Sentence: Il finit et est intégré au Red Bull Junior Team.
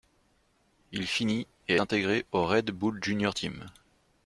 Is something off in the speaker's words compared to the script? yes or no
yes